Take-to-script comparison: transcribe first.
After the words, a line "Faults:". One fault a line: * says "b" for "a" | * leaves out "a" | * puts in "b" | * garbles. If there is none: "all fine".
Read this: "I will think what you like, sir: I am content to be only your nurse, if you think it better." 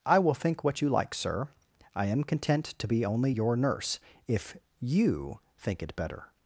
"I will think what you like, sir: I am content to be only your nurse, if you think it better."
Faults:
all fine